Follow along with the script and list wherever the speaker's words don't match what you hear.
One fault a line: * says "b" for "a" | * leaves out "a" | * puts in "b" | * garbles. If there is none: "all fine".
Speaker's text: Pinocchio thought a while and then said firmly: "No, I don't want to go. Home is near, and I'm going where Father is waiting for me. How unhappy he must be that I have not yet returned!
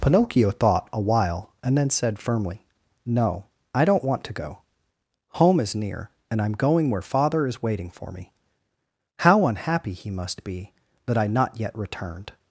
* leaves out "have"